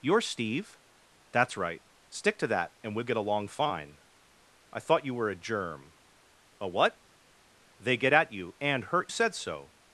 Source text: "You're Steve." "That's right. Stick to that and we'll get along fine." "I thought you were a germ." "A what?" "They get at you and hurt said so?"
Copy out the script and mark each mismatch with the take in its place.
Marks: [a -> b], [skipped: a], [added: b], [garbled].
"You're Steve." "That's right. Stick to that and we'll get along fine." "I thought you were a germ." "A what?" "They get at you and hurt said so?"